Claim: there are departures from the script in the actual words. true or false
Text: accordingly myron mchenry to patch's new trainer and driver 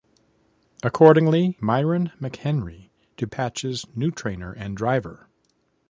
false